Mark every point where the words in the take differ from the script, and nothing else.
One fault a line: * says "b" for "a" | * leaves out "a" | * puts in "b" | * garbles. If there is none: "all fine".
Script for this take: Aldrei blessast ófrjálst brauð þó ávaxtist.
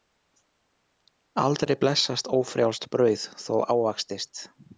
all fine